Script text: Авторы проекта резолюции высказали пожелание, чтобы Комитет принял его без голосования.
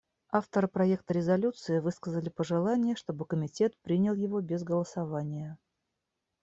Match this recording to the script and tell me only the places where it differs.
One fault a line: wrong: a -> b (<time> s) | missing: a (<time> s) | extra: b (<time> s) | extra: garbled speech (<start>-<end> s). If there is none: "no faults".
no faults